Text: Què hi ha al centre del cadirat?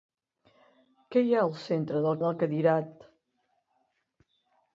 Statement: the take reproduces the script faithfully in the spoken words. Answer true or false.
false